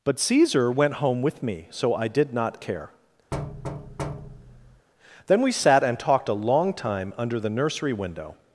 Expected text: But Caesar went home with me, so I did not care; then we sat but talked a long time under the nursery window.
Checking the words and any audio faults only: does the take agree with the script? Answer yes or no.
no